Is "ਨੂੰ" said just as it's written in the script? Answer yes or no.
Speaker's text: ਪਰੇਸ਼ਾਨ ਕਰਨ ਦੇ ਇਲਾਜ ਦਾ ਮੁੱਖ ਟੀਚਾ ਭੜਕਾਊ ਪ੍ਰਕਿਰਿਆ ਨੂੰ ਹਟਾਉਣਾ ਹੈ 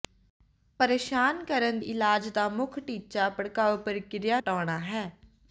no